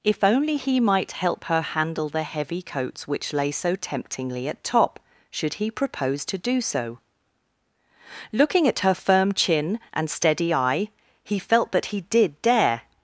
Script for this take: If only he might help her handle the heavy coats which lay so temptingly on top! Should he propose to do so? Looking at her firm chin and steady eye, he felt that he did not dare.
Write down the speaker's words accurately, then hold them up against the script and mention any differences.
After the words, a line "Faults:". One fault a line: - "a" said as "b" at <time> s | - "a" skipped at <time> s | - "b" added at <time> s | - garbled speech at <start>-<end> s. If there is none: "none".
If only he might help her handle the heavy coats which lay so temptingly at top! Should he propose to do so? Looking at her firm chin and steady eye, he felt that he did dare.
Faults:
- "on" said as "at" at 4.5 s
- "not" skipped at 12.4 s